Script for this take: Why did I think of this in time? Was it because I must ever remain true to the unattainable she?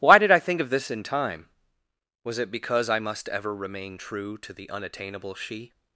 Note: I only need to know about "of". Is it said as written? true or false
true